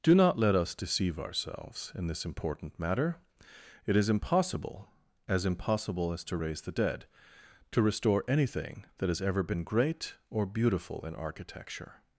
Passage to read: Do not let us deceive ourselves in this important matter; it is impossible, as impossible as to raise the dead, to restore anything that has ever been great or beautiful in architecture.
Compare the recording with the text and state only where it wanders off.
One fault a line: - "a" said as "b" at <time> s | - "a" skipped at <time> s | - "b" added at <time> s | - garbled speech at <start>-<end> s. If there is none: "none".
none